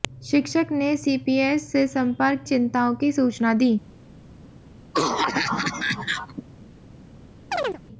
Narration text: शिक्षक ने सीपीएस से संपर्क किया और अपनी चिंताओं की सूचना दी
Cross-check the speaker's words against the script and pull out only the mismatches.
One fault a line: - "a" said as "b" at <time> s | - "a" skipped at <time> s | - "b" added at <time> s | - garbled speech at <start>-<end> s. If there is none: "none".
- "किया और अपनी" skipped at 2.4 s